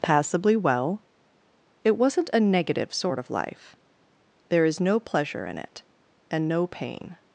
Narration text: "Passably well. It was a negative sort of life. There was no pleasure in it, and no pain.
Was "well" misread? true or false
false